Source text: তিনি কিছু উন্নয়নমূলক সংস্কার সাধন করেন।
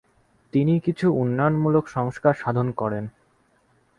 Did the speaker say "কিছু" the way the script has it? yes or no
yes